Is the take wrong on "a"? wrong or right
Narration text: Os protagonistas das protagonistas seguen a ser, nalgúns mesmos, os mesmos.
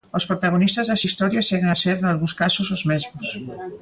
right